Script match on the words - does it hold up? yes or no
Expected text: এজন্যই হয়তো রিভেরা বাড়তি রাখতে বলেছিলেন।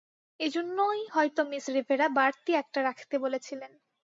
no